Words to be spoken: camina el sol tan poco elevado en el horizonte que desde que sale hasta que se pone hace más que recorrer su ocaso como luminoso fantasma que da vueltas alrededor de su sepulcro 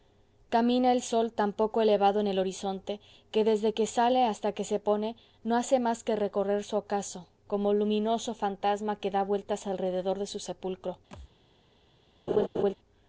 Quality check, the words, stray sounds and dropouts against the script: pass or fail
fail